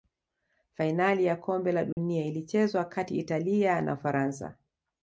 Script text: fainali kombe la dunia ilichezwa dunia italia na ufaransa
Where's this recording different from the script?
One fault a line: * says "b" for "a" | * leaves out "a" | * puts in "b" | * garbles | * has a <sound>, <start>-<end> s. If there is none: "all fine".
* puts in "ya"
* has a dropout, 1.9-2.0 s
* says "kati" for "dunia"